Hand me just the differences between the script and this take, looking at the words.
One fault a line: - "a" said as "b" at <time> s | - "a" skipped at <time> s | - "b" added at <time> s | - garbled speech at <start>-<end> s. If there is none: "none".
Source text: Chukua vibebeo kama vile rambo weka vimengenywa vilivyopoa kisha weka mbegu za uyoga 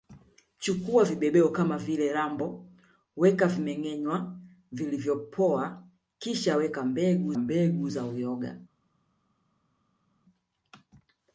- "mbegu" added at 7.4 s